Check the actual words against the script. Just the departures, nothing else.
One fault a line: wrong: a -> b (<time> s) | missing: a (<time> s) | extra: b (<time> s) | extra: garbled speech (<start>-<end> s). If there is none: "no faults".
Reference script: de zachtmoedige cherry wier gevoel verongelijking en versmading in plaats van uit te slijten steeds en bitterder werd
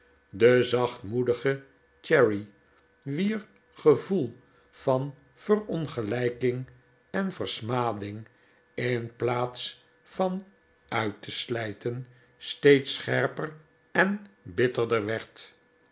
extra: van (4.7 s)
extra: scherper (12.9 s)